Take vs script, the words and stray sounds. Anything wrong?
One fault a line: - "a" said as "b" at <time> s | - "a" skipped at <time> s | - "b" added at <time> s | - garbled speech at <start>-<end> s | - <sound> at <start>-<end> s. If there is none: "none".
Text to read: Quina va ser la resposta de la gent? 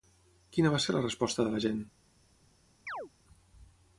- chirp at 2.9-3.1 s